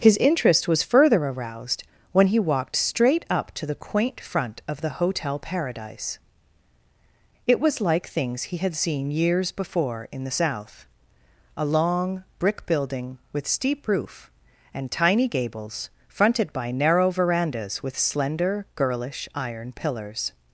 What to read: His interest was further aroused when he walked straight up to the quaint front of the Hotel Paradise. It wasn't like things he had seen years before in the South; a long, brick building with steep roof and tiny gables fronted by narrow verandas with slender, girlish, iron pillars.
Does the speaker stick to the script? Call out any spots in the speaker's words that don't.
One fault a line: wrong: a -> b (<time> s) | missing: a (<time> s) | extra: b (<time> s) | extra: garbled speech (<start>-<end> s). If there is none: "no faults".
wrong: wasn't -> was (7.6 s)